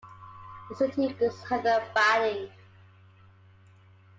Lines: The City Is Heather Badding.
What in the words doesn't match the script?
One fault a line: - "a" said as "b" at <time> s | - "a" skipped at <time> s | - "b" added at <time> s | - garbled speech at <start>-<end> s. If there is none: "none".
none